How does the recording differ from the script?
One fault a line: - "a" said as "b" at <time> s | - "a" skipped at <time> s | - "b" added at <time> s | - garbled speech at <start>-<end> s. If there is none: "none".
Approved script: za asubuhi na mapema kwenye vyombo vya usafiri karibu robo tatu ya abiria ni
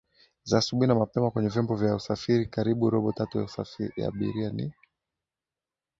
none